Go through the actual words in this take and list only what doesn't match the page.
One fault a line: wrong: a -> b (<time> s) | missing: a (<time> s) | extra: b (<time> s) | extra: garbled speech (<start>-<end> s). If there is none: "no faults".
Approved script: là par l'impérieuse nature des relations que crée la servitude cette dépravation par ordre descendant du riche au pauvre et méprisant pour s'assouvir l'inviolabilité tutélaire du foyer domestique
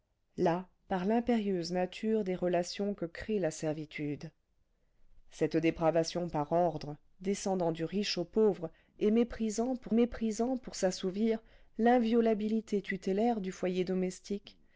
extra: méprisant pour (9.9 s)